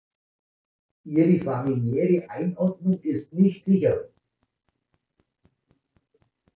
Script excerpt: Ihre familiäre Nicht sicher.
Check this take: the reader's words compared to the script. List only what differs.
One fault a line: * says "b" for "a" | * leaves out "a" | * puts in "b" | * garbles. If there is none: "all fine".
* puts in "Einordnung ist"